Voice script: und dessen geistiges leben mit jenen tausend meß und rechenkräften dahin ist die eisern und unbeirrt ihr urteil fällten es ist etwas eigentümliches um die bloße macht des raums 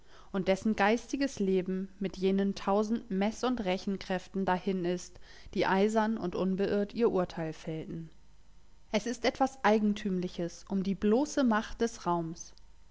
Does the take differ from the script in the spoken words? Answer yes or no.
no